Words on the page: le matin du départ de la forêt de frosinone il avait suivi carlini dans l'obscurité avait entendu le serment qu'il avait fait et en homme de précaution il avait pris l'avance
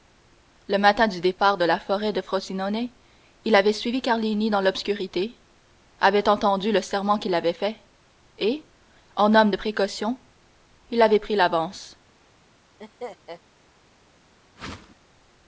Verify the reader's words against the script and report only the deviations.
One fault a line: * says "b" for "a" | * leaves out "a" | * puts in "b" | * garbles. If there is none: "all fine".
all fine